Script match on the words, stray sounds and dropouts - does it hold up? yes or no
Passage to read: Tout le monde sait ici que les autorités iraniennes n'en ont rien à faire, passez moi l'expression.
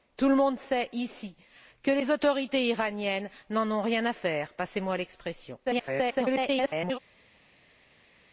no